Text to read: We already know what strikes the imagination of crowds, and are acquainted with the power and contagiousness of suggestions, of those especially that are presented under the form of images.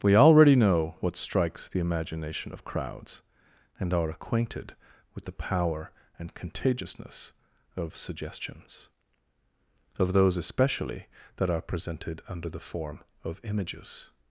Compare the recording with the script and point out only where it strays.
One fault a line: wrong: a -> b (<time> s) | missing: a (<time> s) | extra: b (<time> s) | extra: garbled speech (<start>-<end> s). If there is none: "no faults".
no faults